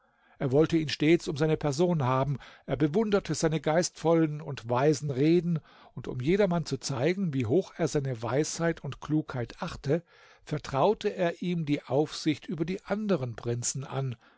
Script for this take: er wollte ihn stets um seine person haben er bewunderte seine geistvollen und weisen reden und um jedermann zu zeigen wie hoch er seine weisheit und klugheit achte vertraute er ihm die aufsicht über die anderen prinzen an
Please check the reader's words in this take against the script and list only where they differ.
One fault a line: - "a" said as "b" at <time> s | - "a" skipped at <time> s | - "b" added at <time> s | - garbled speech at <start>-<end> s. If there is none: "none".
none